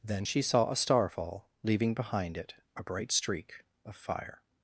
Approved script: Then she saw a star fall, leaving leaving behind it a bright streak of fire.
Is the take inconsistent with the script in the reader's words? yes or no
yes